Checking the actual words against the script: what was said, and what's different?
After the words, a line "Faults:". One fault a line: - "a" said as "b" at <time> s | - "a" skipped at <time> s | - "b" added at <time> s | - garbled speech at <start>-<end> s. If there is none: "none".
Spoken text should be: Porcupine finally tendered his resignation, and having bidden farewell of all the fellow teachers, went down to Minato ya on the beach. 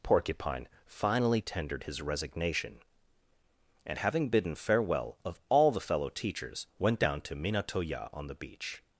Porcupine finally tendered his resignation, and having bidden farewell of all the fellow teachers, went down to Minato ya on the beach.
Faults:
none